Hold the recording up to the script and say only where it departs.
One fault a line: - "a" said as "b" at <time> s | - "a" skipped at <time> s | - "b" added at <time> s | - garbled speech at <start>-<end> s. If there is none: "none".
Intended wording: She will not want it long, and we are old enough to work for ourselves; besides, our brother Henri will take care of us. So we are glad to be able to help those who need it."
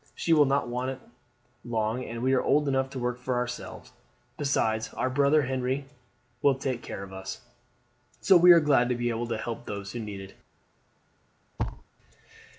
none